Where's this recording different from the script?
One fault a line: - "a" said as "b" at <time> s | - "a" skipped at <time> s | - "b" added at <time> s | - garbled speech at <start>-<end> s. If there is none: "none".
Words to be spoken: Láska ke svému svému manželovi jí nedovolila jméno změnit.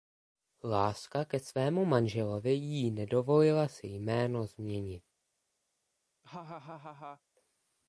- "svému" skipped at 1.9 s
- "si" added at 3.7 s